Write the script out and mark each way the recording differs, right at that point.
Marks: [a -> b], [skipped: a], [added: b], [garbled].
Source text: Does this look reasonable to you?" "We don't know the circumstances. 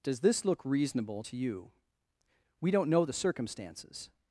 Does this look reasonable to you?" "We don't know the circumstances.